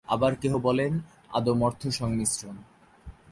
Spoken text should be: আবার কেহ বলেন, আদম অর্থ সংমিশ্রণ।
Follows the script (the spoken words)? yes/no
yes